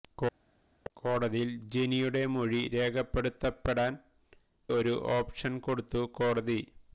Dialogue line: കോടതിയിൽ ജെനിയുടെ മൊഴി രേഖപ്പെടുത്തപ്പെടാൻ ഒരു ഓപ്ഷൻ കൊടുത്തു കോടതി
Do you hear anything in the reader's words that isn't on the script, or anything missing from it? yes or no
no